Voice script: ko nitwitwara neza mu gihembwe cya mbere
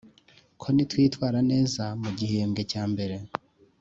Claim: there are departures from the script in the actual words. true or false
false